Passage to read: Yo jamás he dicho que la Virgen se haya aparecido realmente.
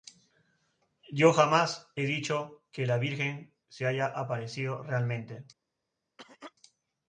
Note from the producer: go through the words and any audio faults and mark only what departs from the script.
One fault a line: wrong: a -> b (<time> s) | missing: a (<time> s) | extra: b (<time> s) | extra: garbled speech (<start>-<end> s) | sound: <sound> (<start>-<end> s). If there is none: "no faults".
sound: cough (6.2-6.5 s)